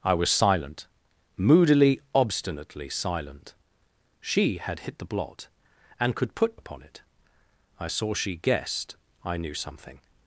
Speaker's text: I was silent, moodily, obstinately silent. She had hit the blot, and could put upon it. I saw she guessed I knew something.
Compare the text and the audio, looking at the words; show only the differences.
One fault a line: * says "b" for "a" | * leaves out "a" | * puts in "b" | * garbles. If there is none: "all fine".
all fine